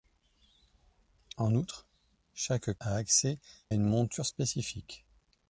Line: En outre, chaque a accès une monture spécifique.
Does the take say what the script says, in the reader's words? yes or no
yes